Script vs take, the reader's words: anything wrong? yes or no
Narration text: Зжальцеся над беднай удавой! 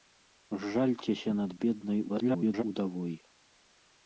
yes